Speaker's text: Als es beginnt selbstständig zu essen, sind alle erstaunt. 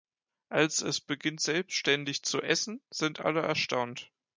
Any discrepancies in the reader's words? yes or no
no